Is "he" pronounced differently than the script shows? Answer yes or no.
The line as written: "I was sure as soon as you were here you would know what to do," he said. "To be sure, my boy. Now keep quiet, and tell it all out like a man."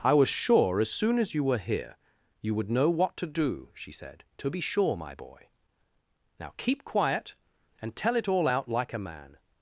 yes